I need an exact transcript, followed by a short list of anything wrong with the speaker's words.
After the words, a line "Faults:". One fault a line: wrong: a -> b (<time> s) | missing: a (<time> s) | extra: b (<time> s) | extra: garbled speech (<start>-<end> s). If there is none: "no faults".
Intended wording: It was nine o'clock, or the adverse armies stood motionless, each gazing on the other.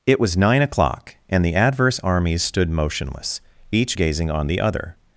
It was nine o'clock, and the adverse armies stood motionless, each gazing on the other.
Faults:
wrong: or -> and (1.3 s)